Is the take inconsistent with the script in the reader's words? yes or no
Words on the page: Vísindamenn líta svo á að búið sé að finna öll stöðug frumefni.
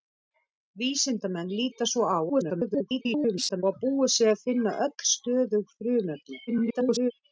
yes